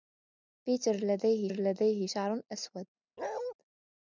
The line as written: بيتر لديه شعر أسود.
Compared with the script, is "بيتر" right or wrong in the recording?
right